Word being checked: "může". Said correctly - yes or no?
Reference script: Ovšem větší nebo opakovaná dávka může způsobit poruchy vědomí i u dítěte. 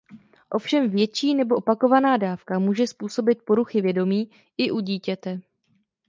yes